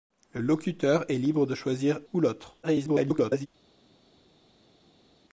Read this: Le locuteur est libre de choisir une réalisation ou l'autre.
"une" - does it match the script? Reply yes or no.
no